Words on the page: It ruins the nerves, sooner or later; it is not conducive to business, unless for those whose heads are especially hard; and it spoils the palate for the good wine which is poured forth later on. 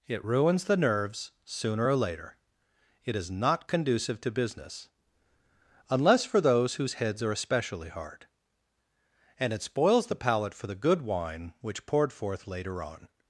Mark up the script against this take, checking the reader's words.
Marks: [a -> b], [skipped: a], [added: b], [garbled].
It ruins the nerves, sooner or later; it is not conducive to business, unless for those whose heads are especially hard; and it spoils the palate for the good wine which [skipped: is] poured forth later on.